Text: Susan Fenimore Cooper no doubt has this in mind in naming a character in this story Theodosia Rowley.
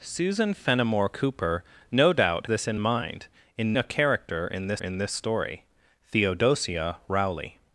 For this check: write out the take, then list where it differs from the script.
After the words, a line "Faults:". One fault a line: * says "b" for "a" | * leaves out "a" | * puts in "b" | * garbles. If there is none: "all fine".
Susan Fenimore Cooper no doubt this in mind in a character in this in this story Theodosia Rowley.
Faults:
* leaves out "has"
* leaves out "naming"
* puts in "in this"